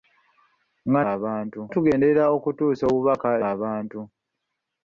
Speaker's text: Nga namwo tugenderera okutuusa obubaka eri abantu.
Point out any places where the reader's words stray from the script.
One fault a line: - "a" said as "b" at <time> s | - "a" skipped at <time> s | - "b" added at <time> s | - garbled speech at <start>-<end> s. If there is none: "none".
- "namwo" said as "abantu" at 1.1 s
- "eri" skipped at 3.3 s